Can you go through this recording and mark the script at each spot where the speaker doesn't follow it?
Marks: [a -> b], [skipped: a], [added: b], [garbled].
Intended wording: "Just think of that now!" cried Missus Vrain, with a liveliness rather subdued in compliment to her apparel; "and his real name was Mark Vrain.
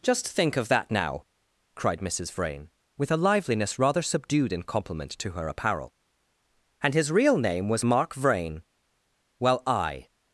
"Just think of that now!" cried Missus Vrain, with a liveliness rather subdued in compliment to her apparel; "and his real name was Mark Vrain. [added: Well I]